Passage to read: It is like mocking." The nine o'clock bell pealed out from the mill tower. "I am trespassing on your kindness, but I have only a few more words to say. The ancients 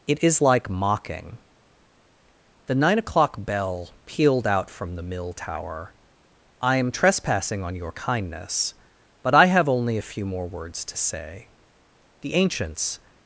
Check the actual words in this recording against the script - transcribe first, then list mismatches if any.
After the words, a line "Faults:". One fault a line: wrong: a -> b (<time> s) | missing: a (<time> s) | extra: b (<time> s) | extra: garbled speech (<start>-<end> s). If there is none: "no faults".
It is like mocking." The nine o'clock bell pealed out from the mill tower. "I am trespassing on your kindness, but I have only a few more words to say. The ancients
Faults:
no faults